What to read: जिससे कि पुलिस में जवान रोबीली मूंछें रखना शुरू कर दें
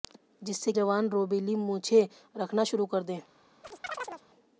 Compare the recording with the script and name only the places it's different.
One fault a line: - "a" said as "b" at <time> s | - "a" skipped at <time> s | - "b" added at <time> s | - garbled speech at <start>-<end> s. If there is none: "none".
- "कि पुलिस में" skipped at 0.7 s